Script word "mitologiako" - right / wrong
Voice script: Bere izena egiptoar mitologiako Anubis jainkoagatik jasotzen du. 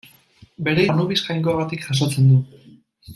wrong